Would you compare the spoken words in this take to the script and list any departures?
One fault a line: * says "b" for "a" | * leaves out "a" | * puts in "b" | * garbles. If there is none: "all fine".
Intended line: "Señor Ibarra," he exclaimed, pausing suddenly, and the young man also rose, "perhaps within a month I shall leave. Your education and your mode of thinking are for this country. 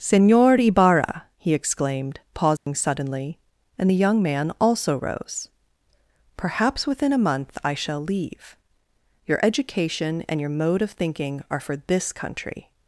all fine